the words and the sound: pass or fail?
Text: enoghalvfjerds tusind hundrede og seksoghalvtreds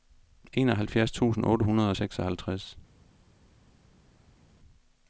fail